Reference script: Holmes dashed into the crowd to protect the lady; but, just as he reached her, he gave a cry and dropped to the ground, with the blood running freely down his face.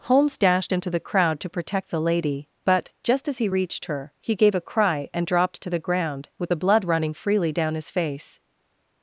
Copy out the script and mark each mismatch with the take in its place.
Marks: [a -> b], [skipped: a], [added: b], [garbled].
Holmes dashed into the crowd to protect the lady; but, just as he reached her, he gave a cry and dropped to the ground, with the blood running freely down his face.